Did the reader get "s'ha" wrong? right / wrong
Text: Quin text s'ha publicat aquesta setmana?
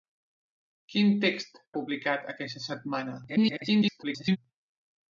wrong